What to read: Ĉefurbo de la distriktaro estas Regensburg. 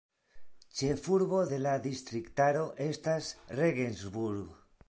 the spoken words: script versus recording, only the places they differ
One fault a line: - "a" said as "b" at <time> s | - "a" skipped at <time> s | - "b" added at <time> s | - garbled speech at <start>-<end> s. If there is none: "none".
none